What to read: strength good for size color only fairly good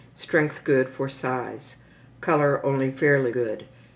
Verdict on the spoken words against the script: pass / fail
pass